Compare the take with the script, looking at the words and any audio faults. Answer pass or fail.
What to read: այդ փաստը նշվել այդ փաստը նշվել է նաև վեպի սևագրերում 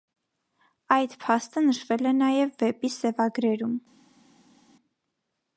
fail